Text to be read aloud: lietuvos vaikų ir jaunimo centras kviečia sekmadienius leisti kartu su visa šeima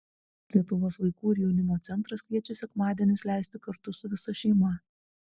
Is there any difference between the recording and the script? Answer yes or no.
no